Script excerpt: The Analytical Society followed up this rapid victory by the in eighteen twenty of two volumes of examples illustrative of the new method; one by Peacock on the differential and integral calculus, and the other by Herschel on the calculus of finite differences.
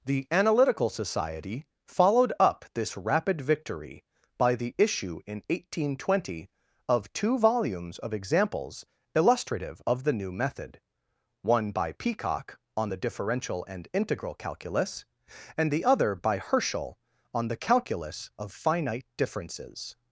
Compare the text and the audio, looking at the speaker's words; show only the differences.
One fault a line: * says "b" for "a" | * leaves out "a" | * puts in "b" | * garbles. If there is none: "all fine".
* puts in "issue"